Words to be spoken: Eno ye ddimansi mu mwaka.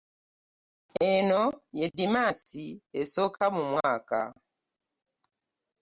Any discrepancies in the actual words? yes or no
yes